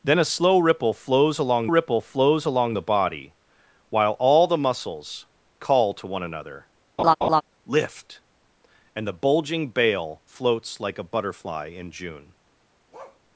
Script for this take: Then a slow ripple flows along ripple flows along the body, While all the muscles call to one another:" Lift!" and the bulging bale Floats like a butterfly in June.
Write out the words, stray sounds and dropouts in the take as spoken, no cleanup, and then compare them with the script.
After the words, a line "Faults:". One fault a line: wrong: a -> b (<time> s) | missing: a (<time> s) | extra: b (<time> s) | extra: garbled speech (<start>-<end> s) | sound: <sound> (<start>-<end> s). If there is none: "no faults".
Then a slow ripple flows along ripple flows along the body, While all the muscles call to one another:" Lift!" and the bulging bale Floats like a butterfly in June.
Faults:
sound: laugh (7.0-7.4 s)
sound: bark (12.9-13.2 s)